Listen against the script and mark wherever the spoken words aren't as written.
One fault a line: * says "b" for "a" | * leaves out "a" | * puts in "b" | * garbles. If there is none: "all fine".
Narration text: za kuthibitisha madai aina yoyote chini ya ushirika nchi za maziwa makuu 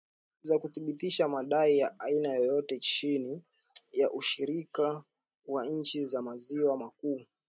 * puts in "ya"
* puts in "wa"